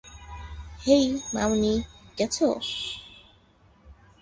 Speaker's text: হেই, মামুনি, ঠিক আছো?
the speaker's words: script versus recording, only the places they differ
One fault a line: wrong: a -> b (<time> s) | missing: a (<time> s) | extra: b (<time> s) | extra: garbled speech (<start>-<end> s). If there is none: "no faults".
missing: ঠিক (1.7 s)